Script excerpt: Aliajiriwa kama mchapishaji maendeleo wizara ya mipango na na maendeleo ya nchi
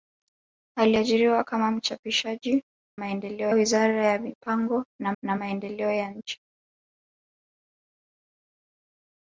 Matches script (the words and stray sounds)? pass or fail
pass